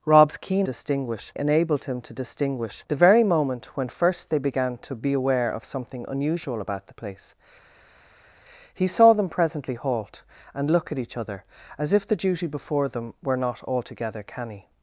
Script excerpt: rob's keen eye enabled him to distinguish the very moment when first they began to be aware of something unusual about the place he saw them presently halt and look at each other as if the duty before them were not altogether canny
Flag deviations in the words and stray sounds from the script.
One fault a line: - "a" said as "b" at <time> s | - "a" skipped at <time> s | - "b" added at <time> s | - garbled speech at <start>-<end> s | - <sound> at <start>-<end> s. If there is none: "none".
- "eye" said as "distinguish" at 0.6 s